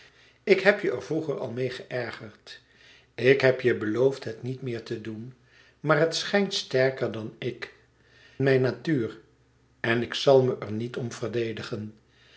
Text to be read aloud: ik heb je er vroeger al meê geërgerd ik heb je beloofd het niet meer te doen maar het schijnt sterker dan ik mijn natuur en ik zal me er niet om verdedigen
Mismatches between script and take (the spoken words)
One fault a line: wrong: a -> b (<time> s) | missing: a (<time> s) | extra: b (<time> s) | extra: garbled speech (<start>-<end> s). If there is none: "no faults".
no faults